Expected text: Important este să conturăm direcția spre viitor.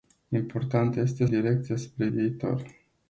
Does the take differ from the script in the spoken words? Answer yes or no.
yes